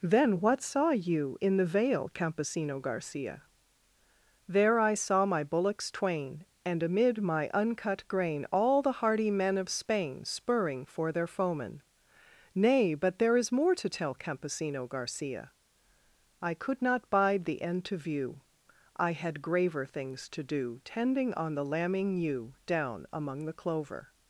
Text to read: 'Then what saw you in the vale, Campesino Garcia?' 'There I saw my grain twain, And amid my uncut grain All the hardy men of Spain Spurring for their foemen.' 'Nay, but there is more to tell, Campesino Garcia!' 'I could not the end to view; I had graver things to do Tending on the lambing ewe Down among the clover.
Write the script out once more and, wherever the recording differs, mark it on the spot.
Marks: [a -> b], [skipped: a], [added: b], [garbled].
'Then what saw you in the vale, Campesino Garcia?' 'There I saw my [grain -> bullocks] twain, And amid my uncut grain All the hardy men of Spain Spurring for their foemen.' 'Nay, but there is more to tell, Campesino Garcia!' 'I could not [added: bide] the end to view; I had graver things to do Tending on the lambing ewe Down among the clover.